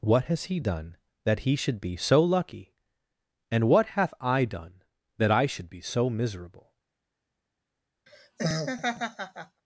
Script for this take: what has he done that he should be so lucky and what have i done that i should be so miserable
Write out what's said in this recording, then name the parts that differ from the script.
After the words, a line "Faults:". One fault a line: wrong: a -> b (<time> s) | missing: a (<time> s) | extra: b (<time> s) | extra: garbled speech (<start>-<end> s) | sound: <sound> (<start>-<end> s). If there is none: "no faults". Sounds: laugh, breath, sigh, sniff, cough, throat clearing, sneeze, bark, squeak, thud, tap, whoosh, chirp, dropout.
what has he done that he should be so lucky and what hath i done that i should be so miserable
Faults:
wrong: have -> hath (4.0 s)
sound: laugh (8.1-9.6 s)